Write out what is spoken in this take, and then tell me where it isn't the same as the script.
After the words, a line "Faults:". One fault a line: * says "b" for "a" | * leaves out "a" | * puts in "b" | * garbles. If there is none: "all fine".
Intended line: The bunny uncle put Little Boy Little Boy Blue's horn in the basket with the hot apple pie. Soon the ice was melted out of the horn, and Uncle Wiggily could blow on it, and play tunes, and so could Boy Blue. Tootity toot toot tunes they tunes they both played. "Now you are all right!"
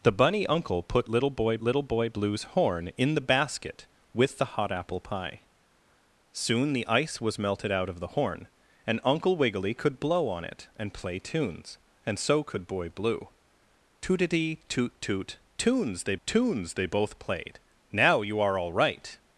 The bunny uncle put Little Boy Little Boy Blue's horn in the basket with the hot apple pie. Soon the ice was melted out of the horn, and Uncle Wiggily could blow on it, and play tunes, and so could Boy Blue. Tootity toot toot tunes they tunes they both played. "Now you are all right!"
Faults:
all fine